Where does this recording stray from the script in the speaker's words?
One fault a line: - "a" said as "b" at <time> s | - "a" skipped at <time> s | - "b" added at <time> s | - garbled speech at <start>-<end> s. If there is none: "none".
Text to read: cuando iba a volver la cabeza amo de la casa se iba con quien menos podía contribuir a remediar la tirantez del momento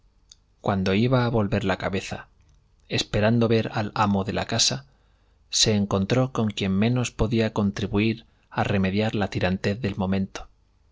- "esperando ver al" added at 2.9 s
- "iba" said as "encontró" at 5.7 s